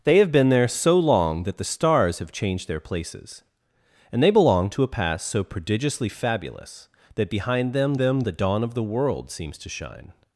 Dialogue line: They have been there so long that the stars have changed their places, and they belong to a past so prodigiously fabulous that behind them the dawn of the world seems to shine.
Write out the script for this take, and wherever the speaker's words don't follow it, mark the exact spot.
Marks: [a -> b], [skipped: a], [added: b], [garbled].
They have been there so long that the stars have changed their places, and they belong to a past so prodigiously fabulous that behind them [added: them] the dawn of the world seems to shine.